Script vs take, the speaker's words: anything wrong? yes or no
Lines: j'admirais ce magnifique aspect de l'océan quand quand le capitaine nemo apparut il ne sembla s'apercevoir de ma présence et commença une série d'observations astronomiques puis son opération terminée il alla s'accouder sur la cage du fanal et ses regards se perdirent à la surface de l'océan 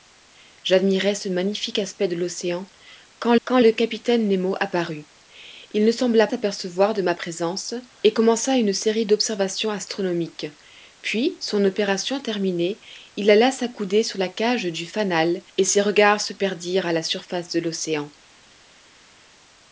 no